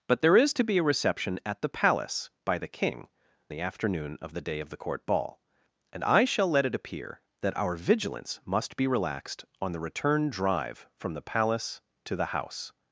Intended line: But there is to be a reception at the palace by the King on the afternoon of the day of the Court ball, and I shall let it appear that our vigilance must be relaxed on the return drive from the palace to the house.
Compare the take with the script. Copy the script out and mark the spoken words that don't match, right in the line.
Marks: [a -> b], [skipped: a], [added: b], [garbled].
But there is to be a reception at the palace by the King [skipped: on] the afternoon of the day of the Court ball, and I shall let it appear that our vigilance must be relaxed on the return drive from the palace to the house.